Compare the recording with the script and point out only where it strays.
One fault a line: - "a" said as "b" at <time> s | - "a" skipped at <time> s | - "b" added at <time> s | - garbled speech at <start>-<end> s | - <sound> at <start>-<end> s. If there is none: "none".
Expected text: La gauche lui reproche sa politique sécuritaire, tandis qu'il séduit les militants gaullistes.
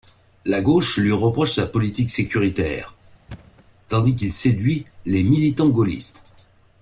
- thud at 3.3-3.7 s